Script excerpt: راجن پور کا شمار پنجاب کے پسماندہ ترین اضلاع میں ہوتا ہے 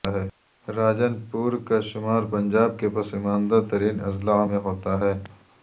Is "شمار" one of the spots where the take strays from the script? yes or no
no